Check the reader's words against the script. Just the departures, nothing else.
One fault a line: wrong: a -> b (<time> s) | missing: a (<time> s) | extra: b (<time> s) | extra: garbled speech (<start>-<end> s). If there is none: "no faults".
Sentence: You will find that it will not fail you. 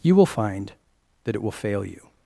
missing: not (1.5 s)